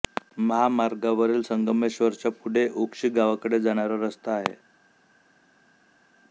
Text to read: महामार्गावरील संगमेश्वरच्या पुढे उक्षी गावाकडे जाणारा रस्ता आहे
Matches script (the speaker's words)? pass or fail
pass